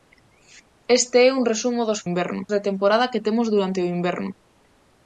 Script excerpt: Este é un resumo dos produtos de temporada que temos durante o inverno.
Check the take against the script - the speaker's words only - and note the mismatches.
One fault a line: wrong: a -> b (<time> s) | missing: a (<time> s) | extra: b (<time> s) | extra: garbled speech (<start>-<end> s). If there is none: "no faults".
wrong: produtos -> inverno (2.1 s)